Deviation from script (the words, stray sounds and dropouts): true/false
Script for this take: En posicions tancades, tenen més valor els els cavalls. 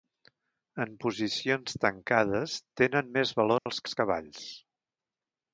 true